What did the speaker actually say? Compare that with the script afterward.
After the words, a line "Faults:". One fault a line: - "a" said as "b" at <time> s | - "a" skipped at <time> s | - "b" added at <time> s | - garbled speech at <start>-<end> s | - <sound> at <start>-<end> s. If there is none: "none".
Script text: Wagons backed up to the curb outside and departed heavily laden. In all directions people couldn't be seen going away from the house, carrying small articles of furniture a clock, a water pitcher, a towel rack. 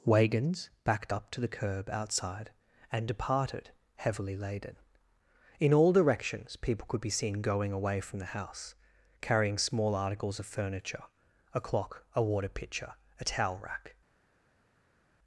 Wagons backed up to the curb outside and departed heavily laden. In all directions people could be seen going away from the house, carrying small articles of furniture a clock, a water pitcher, a towel rack.
Faults:
- "couldn't" said as "could" at 6.9 s